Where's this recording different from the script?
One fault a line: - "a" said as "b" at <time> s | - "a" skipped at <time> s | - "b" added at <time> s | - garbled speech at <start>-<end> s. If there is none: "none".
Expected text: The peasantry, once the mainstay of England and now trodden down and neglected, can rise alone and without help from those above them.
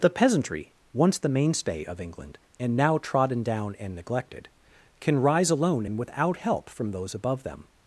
none